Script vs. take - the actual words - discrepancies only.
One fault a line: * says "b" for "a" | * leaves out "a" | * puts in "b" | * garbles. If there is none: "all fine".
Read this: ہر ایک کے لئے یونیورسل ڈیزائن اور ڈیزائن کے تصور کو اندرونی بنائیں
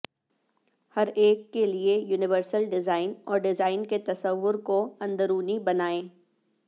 all fine